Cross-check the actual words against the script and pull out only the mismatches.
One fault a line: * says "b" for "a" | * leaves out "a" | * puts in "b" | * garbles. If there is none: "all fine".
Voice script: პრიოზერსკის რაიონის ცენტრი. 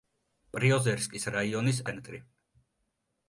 all fine